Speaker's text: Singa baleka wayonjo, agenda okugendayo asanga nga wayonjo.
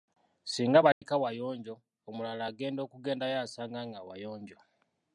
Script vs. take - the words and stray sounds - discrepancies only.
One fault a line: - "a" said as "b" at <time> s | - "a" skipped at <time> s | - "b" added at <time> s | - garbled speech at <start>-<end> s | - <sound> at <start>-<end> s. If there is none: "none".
- dropout at 0.9-1.0 s
- "omulala" added at 2.1 s